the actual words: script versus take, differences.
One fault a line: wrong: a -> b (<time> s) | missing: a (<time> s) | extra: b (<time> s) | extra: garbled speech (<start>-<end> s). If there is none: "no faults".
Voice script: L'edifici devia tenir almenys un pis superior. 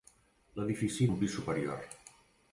missing: devia tenir almenys (1.1 s)